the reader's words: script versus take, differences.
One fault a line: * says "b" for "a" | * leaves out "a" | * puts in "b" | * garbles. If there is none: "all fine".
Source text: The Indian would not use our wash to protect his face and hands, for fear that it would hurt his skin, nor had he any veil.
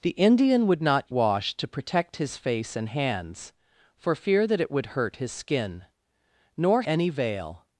* leaves out "use our"
* leaves out "had he"